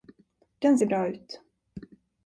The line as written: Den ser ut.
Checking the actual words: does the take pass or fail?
fail